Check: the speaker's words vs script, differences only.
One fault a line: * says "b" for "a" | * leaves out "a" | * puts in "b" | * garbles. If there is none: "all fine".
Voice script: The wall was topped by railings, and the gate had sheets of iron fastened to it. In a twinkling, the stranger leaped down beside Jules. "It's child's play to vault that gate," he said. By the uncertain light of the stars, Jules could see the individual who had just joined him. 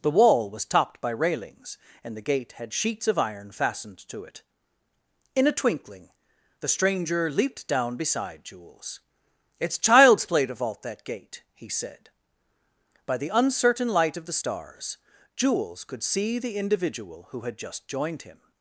all fine